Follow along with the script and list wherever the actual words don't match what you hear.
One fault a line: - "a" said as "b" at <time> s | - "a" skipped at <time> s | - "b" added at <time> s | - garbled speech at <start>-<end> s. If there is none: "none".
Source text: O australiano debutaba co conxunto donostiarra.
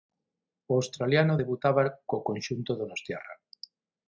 none